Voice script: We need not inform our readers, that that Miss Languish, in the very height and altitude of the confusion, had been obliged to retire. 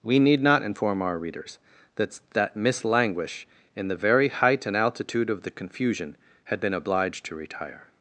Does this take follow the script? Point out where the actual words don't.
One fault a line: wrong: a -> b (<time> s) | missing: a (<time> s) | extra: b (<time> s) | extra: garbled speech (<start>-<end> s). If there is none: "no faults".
no faults